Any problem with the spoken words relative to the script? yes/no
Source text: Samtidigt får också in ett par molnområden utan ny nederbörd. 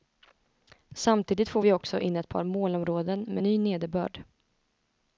yes